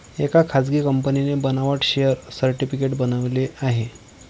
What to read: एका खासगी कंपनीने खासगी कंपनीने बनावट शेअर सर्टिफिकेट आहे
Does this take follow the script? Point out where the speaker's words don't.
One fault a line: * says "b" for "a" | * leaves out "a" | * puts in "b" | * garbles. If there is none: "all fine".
* leaves out "खासगी कंपनीने"
* puts in "बनवले"